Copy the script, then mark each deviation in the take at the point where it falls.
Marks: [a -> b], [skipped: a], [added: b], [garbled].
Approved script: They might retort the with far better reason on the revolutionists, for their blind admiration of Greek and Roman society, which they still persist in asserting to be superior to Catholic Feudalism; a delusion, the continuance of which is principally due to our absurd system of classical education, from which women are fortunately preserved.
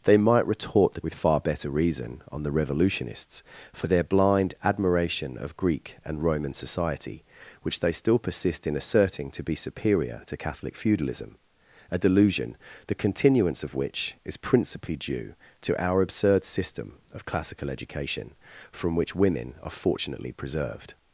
They might retort the with far better reason on the revolutionists, for their blind admiration of Greek and Roman society, which they still persist in asserting to be superior to Catholic Feudalism; a delusion, the continuance of which is principally due to our absurd system of classical education, from which women are fortunately preserved.